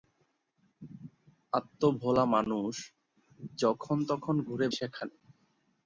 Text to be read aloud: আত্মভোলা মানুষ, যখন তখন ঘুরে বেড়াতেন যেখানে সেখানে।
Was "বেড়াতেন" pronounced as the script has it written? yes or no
no